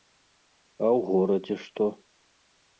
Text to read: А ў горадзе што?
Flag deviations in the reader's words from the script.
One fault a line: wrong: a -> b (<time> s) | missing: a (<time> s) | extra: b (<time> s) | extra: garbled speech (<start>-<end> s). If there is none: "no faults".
no faults